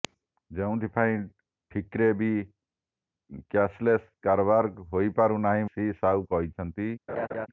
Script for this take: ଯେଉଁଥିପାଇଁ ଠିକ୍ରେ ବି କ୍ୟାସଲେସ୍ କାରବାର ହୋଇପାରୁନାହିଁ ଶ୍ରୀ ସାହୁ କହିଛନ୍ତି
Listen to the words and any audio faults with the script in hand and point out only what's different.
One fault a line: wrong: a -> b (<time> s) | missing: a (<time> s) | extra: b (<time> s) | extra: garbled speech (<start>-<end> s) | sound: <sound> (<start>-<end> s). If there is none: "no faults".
sound: laugh (7.1-7.5 s)